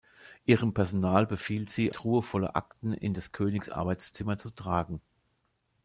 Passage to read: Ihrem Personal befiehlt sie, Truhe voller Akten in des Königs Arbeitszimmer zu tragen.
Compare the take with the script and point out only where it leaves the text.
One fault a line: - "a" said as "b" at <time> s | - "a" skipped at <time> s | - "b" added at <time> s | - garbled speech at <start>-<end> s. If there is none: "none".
none